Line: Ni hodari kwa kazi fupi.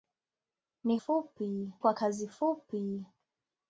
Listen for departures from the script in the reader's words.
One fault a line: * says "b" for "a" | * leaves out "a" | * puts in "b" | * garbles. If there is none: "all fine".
* says "fupi" for "hodari"